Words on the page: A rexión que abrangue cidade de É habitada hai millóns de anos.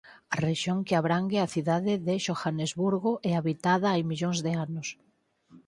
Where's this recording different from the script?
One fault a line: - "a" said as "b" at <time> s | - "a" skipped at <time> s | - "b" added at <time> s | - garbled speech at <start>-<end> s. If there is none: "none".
- "a" added at 1.4 s
- "Xohanesburgo" added at 2.2 s